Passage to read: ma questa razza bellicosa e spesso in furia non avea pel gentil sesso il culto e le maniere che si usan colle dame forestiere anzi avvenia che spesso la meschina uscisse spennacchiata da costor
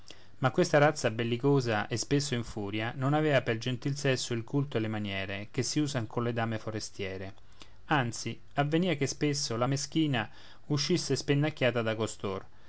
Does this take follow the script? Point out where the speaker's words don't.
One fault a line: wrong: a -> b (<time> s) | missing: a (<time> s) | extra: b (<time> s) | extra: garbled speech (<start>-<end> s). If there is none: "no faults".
no faults